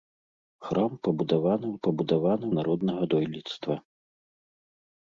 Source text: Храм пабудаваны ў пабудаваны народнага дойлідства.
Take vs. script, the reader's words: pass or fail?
pass